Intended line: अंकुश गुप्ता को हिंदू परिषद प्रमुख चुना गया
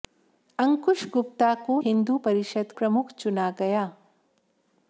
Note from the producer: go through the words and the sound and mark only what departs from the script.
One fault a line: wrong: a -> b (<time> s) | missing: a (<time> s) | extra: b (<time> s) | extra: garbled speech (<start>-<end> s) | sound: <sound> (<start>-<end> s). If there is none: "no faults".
no faults